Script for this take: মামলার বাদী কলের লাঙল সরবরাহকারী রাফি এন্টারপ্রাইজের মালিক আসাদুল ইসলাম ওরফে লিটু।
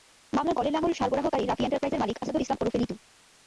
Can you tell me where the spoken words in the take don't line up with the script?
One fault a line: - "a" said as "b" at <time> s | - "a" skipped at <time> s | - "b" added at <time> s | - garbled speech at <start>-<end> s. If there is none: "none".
- "বাদী" skipped at 0.6 s